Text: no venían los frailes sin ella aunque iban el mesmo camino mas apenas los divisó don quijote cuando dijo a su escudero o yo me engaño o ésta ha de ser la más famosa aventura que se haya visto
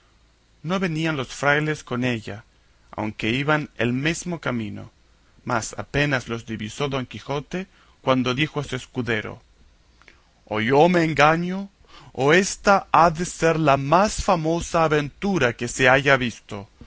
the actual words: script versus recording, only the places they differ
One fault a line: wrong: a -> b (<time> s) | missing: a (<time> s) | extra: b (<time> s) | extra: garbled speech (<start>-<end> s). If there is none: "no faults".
wrong: sin -> con (1.8 s)